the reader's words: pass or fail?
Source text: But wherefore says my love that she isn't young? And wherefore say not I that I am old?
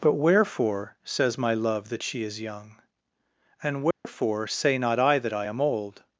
fail